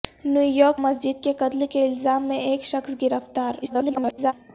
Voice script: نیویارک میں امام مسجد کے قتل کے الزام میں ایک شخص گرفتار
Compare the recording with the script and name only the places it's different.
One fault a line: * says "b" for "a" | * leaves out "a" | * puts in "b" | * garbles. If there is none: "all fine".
* leaves out "میں امام"
* garbles